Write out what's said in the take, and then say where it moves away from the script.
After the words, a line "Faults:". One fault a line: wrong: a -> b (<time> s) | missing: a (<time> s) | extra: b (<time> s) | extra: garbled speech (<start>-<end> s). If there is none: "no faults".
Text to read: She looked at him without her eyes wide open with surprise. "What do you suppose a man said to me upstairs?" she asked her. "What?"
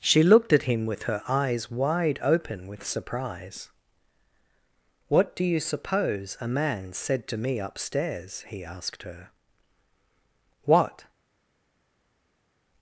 She looked at him with her eyes wide open with surprise. "What do you suppose a man said to me upstairs?" he asked her. "What?"
Faults:
wrong: without -> with (0.9 s)
wrong: she -> he (8.5 s)